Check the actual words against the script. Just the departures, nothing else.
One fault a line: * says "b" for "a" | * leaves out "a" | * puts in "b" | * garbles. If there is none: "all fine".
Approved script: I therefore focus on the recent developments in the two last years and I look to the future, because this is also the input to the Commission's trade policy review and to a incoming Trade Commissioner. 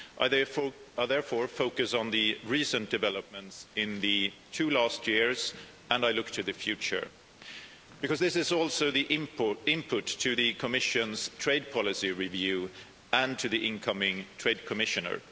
* says "the" for "a"